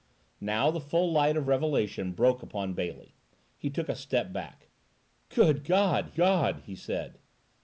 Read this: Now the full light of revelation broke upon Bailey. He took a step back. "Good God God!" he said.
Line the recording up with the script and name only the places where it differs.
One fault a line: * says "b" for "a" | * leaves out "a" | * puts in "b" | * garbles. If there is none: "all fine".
all fine